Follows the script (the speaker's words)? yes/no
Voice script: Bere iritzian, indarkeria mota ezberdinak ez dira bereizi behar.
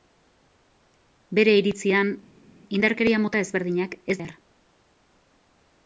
no